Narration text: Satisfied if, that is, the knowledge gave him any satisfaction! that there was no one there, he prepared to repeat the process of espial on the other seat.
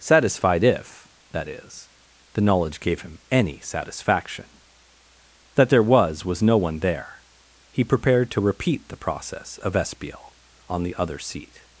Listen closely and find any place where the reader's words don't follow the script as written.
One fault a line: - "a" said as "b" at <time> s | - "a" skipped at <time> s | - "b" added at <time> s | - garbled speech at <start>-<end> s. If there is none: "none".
- "was" added at 6.2 s